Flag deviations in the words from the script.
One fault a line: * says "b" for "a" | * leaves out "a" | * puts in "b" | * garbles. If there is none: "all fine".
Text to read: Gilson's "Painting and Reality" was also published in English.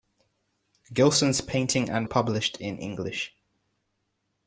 * leaves out "Reality was also"